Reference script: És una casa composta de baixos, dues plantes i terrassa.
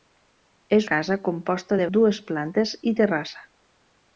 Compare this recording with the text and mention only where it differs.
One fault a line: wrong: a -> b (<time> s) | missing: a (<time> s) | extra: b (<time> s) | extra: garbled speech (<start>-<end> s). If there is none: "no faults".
missing: una (0.9 s)
missing: baixos (1.9 s)